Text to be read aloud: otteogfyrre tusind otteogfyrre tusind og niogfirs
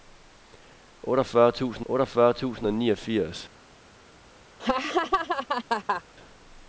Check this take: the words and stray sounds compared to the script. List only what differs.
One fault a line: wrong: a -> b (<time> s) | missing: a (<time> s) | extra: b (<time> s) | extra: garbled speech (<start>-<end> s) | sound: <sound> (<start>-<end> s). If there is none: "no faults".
sound: laugh (4.6-6.0 s)